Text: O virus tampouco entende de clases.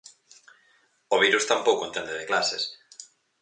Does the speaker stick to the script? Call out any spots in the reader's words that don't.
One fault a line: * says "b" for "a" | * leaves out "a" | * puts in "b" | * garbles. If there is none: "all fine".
all fine